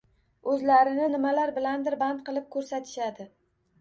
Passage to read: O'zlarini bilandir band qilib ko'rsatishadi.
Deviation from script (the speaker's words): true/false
true